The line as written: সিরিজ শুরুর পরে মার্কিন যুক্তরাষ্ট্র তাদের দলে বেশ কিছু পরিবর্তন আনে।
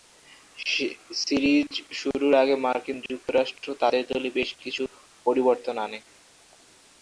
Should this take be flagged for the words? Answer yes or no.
yes